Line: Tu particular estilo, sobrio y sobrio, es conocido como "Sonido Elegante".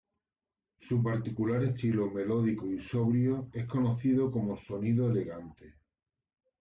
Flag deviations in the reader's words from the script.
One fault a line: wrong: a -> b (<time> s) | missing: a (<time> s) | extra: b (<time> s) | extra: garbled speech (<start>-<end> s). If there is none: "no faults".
wrong: Tu -> Su (0.8 s)
wrong: sobrio -> melódico (2.1 s)